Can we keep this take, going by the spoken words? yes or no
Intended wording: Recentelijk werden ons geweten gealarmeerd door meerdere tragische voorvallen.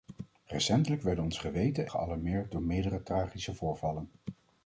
yes